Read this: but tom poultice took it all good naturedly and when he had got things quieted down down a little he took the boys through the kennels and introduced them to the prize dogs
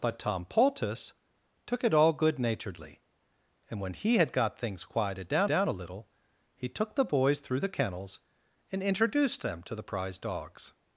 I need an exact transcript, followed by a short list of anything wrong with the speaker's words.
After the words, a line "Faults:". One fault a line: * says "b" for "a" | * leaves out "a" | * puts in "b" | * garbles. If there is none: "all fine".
but tom poultice took it all good naturedly and when he had got things quieted down down a little he took the boys through the kennels and introduced them to the prize dogs
Faults:
all fine